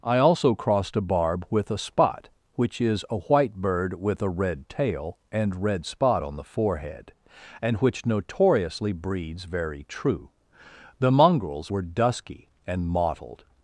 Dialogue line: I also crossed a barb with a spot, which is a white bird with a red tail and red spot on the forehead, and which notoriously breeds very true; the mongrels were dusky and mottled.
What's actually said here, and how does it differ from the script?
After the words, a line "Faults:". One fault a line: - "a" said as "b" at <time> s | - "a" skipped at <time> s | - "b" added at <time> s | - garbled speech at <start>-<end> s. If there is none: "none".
I also crossed a barb with a spot, which is a white bird with a red tail and red spot on the forehead, and which notoriously breeds very true; the mongrels were dusky and mottled.
Faults:
none